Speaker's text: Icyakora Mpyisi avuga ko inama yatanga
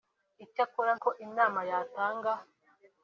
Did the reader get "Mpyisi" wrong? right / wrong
wrong